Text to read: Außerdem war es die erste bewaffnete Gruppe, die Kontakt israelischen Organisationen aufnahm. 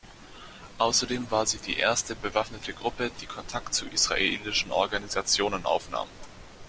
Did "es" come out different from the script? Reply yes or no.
yes